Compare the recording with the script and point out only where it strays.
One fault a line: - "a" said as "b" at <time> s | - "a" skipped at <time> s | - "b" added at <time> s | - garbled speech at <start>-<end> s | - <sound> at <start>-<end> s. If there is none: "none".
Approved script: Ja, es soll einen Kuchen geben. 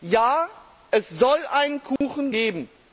- dropout at 2.0-2.0 s